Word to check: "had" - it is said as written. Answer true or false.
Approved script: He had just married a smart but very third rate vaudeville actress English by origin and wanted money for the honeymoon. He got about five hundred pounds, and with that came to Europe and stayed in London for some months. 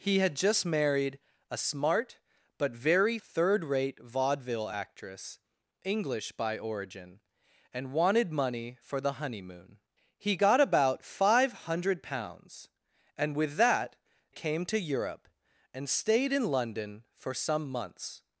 true